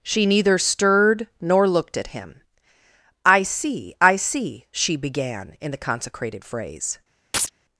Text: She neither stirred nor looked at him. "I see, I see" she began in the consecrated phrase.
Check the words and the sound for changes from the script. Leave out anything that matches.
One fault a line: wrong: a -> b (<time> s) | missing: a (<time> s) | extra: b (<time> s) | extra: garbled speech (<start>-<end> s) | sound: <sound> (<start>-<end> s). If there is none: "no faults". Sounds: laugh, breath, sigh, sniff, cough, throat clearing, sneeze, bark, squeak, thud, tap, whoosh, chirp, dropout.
sound: chirp (7.3-7.5 s)